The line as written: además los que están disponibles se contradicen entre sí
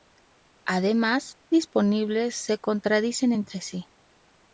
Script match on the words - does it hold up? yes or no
no